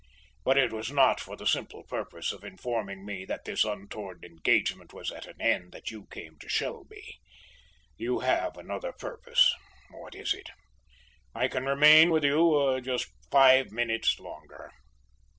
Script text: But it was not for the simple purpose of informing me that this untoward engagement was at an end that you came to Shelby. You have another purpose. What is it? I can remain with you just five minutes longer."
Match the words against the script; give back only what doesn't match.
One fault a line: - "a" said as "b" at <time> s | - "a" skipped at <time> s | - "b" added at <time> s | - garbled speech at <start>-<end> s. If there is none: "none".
none